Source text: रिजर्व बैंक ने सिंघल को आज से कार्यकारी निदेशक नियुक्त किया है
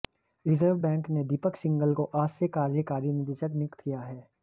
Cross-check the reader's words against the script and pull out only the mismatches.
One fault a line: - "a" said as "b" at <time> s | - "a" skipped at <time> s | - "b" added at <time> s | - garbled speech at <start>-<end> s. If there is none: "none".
- "दीपक" added at 1.2 s